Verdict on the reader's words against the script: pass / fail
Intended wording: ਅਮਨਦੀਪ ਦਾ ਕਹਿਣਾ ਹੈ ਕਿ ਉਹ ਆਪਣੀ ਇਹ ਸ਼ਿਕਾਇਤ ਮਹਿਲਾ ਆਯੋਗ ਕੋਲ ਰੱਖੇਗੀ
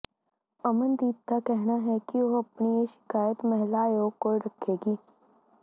pass